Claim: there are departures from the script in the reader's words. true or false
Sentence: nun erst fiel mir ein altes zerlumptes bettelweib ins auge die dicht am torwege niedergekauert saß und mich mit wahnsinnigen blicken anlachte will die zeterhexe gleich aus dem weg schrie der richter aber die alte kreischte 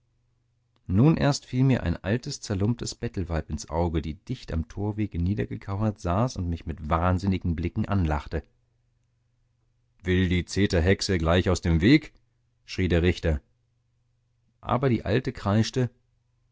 false